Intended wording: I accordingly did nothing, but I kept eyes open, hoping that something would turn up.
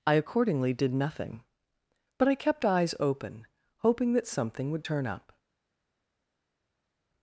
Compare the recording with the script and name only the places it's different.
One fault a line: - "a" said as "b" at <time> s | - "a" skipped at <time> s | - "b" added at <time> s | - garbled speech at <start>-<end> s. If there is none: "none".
none